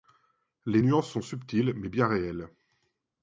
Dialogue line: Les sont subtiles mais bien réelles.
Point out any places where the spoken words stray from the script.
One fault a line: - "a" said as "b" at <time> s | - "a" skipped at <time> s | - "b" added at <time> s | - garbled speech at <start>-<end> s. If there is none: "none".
- "nuances" added at 0.8 s